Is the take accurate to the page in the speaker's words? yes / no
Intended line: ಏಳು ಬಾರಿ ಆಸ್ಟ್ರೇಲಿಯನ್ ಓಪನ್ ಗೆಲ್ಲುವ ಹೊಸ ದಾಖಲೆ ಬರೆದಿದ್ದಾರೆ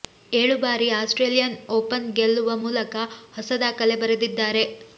no